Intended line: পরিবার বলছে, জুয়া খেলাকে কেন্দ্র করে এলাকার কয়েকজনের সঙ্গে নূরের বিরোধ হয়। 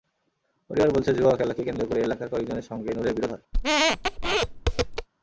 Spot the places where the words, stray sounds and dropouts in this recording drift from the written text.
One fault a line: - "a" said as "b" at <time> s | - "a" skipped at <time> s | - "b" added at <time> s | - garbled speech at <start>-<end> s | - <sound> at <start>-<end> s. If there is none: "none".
- squeak at 3.5-5.1 s